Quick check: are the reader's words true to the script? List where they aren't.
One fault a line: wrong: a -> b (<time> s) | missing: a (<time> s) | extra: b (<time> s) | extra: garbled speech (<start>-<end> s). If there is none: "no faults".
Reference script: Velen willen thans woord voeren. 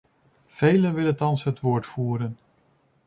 extra: het (1.4 s)